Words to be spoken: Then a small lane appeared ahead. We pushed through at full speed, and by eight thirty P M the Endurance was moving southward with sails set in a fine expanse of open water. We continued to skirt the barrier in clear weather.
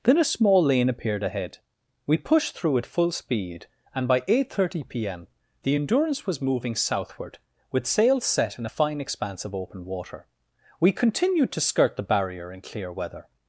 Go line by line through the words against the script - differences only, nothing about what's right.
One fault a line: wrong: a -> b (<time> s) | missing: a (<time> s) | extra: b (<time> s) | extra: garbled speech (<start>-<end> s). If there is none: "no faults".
no faults